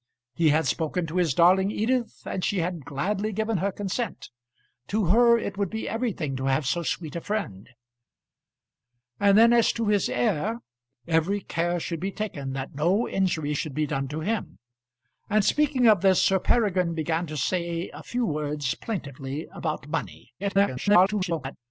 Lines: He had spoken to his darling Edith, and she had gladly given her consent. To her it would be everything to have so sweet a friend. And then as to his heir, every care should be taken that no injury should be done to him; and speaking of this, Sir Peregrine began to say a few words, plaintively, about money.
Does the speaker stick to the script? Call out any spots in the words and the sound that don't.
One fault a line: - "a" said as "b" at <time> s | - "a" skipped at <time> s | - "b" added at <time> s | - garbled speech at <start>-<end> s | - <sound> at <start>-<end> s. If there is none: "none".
- garbled speech at 20.4-21.6 s